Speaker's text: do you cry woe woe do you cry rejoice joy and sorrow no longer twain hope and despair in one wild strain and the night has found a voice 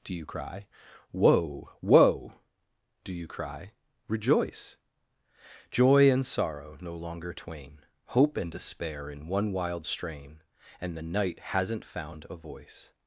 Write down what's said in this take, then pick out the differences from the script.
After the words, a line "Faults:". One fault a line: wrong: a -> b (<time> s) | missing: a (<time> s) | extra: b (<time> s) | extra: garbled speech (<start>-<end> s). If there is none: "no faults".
do you cry woe woe do you cry rejoice joy and sorrow no longer twain hope and despair in one wild strain and the night hasn't found a voice
Faults:
wrong: has -> hasn't (11.4 s)